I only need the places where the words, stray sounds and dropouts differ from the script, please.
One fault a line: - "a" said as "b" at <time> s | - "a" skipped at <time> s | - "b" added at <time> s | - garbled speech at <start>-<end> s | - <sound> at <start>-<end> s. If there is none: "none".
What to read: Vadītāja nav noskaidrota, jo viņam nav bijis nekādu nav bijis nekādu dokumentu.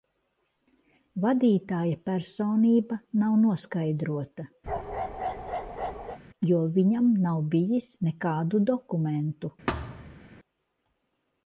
- "personība" added at 2.1 s
- bark at 4.7-6.2 s
- "nav bijis nekādu" skipped at 8.6 s
- thud at 9.7-10.2 s